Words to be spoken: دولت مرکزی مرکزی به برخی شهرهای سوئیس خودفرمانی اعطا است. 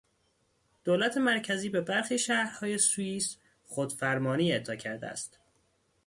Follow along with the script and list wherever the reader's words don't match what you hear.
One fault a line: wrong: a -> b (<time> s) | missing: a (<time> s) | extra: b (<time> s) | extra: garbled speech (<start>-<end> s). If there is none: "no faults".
missing: مرکزی (1.7 s)
extra: کرده (4.8 s)